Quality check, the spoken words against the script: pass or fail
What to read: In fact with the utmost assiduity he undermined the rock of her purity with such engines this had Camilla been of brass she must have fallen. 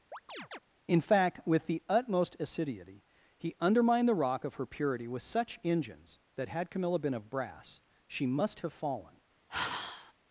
fail